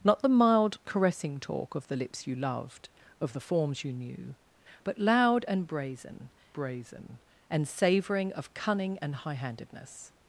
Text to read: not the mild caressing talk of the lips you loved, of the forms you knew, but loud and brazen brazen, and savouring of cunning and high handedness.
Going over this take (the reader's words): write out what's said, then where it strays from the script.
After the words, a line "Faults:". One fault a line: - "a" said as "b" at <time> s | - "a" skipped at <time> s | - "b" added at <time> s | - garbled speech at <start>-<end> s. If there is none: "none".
not the mild caressing talk of the lips you loved, of the forms you knew, but loud and brazen brazen, and savouring of cunning and high handedness.
Faults:
none